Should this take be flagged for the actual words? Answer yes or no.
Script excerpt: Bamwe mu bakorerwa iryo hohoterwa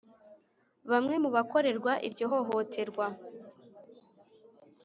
no